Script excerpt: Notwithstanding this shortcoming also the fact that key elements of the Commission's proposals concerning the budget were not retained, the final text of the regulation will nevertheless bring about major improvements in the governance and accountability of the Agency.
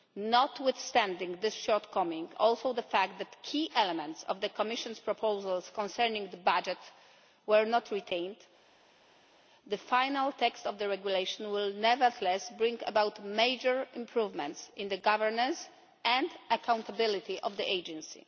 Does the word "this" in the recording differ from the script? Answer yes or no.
no